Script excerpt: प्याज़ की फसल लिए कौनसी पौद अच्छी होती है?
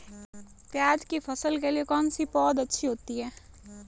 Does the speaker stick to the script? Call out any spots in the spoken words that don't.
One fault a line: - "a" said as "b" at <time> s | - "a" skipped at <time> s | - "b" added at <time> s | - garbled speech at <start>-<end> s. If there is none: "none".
- "के" added at 1.6 s